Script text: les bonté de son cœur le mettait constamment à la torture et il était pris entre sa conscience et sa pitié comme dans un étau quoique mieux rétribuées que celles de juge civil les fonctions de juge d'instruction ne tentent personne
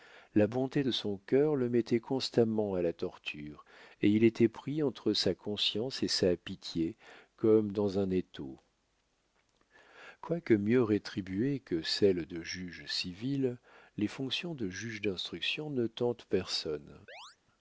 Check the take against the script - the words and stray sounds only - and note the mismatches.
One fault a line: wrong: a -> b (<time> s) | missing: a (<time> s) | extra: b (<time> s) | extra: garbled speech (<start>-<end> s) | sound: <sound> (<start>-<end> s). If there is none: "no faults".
wrong: les -> la (0.3 s)
sound: chirp (17.1-17.4 s)